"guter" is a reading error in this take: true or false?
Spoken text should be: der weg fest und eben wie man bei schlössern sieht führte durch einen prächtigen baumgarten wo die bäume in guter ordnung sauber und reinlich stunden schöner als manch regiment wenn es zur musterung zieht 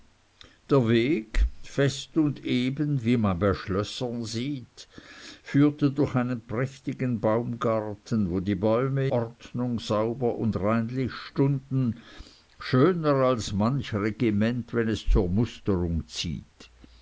true